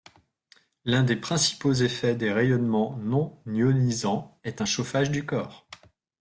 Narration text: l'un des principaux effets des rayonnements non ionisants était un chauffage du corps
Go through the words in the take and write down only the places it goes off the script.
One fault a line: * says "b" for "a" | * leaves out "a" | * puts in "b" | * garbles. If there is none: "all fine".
* says "est" for "était"